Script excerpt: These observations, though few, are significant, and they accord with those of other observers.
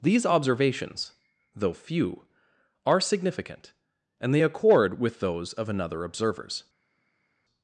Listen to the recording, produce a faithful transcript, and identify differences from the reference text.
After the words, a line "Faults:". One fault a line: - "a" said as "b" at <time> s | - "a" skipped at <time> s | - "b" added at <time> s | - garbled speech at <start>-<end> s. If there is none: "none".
These observations, though few, are significant, and they accord with those of another observers.
Faults:
- "other" said as "another" at 5.7 s